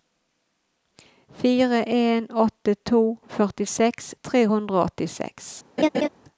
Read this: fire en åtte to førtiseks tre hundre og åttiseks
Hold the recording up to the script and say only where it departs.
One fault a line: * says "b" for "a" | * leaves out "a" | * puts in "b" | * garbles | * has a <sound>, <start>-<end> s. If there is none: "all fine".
* has a laugh, 5.8-6.1 s